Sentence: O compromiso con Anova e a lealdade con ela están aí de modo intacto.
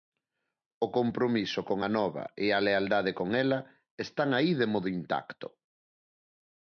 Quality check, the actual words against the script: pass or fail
pass